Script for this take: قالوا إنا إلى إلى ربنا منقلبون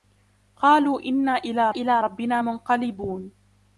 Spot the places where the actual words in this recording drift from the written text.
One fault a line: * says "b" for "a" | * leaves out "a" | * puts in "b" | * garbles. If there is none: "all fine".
all fine